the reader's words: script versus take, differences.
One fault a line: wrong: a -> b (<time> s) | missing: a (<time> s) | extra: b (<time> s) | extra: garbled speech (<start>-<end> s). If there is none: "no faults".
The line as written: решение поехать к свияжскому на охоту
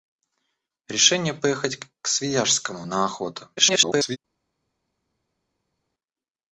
extra: garbled speech (3.6-4.2 s)